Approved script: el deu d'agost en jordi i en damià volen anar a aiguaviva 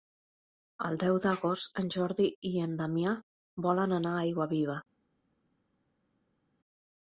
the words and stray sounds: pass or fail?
pass